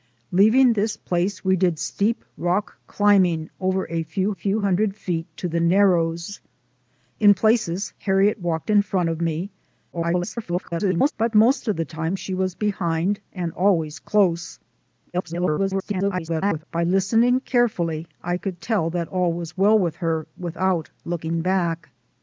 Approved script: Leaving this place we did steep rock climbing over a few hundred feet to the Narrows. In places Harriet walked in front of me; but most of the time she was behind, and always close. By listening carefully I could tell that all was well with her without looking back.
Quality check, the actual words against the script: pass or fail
fail